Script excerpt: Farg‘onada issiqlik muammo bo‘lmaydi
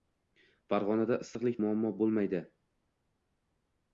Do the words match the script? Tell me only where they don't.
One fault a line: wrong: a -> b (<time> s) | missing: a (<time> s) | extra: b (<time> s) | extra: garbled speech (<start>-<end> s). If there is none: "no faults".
no faults